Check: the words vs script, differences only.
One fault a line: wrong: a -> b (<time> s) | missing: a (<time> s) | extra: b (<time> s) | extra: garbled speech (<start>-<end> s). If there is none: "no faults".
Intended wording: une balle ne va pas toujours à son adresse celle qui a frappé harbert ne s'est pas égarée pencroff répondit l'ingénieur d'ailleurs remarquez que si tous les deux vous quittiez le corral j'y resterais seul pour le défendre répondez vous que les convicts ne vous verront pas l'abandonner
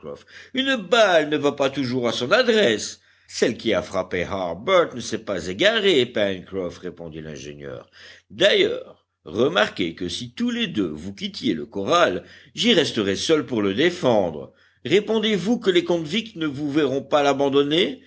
no faults